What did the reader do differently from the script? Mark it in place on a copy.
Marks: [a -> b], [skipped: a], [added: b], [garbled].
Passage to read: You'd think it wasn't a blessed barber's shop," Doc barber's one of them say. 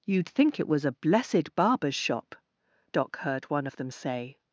You'd think it [wasn't -> was] a blessed barber's shop," Doc [barber's -> heard] one of them say.